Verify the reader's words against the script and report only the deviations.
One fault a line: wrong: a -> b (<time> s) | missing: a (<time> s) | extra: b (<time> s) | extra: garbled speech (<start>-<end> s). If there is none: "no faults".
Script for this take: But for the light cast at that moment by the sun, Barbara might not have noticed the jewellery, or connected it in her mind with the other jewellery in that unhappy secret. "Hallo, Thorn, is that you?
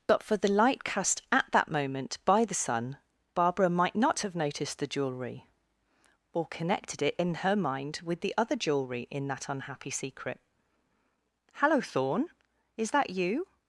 no faults